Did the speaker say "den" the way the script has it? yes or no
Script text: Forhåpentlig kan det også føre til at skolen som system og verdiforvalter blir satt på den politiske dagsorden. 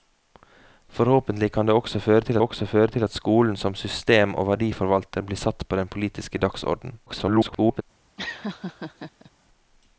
yes